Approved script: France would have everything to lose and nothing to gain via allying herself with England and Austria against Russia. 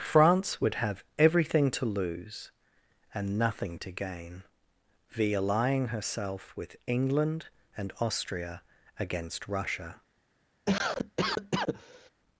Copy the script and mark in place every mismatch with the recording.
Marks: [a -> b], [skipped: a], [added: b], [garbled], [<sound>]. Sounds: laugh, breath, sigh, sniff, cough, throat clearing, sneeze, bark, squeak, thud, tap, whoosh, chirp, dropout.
France would have everything to lose and nothing to gain via allying herself with England and Austria against Russia. [cough]